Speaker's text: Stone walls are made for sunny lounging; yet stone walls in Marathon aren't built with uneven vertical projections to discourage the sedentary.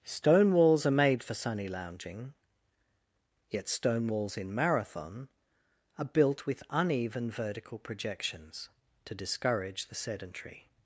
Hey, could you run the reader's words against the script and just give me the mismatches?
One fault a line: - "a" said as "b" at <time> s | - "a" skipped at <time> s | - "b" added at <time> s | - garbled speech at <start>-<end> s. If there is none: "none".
- "aren't" said as "are" at 6.0 s